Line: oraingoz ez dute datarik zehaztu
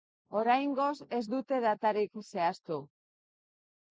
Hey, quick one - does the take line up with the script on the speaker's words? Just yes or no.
yes